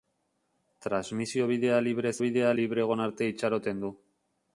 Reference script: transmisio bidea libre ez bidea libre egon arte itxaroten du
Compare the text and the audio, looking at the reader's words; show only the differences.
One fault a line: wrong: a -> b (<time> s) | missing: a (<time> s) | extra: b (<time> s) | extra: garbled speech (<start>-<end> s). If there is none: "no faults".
no faults